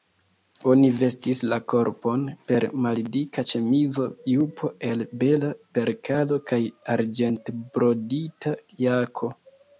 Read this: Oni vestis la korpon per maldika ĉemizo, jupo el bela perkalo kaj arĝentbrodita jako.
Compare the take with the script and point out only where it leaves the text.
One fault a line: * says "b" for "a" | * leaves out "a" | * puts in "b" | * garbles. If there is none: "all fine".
all fine